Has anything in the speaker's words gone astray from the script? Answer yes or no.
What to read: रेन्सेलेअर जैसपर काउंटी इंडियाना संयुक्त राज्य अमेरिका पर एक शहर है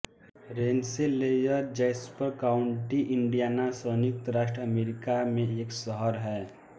yes